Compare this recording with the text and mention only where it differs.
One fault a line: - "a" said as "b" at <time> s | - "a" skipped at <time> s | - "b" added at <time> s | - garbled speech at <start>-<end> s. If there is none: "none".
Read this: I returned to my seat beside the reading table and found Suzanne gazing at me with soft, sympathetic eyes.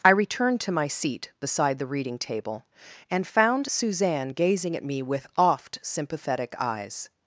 - "soft" said as "oft" at 5.4 s